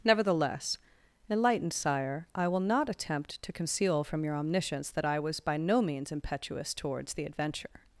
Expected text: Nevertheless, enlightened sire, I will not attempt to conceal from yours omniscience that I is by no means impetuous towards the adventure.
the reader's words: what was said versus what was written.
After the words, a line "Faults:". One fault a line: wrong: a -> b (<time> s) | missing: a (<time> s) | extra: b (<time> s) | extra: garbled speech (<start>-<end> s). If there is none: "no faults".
Nevertheless, enlightened sire, I will not attempt to conceal from your omniscience that I was by no means impetuous towards the adventure.
Faults:
wrong: yours -> your (4.2 s)
wrong: is -> was (5.2 s)